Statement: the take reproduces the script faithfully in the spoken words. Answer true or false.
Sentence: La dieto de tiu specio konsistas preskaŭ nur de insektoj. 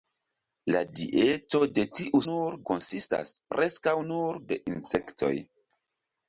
false